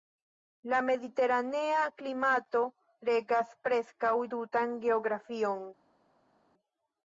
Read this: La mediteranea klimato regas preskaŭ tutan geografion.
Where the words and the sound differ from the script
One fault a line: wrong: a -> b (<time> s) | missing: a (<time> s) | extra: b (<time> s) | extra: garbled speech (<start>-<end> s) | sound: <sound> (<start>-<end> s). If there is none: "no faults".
no faults